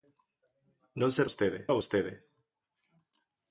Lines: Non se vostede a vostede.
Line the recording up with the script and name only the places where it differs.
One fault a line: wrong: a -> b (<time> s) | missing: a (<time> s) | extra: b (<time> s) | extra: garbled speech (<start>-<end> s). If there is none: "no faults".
no faults